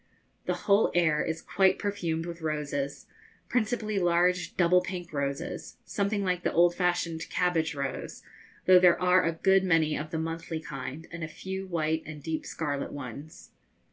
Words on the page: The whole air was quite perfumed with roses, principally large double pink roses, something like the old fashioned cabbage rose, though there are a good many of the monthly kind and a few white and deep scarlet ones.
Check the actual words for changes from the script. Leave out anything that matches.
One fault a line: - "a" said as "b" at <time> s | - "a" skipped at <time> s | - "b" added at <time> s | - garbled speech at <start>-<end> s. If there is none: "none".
- "was" said as "is" at 1.2 s